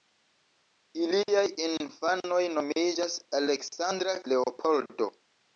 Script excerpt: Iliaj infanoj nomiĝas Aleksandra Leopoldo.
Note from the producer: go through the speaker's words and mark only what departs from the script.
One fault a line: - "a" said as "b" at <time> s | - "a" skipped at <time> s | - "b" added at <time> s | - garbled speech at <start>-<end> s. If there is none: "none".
none